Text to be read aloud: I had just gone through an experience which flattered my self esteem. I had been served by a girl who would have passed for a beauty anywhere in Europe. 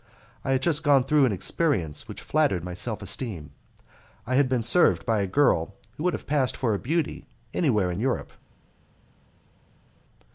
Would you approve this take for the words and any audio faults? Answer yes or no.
yes